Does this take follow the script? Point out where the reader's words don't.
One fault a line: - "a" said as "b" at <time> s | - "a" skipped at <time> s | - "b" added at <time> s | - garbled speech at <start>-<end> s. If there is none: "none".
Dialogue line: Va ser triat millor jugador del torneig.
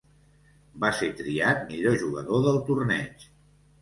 none